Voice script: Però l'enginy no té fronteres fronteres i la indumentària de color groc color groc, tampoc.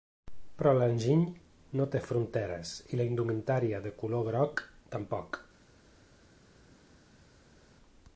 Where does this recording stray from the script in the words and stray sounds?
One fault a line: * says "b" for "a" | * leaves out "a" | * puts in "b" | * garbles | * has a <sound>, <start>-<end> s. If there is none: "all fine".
* leaves out "fronteres"
* leaves out "color groc"